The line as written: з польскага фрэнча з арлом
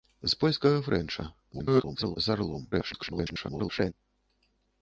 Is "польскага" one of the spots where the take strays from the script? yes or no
no